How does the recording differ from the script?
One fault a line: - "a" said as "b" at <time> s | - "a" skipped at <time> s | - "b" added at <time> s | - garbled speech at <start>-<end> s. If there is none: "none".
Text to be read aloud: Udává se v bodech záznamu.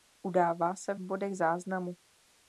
none